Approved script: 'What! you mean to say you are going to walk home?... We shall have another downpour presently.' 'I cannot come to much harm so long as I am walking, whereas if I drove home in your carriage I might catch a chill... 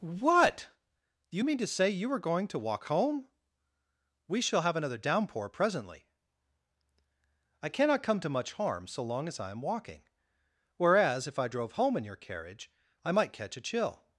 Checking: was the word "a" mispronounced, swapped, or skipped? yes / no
no